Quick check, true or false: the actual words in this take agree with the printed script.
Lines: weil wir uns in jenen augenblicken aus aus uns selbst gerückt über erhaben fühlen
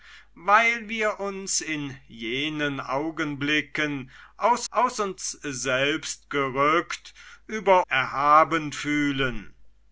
true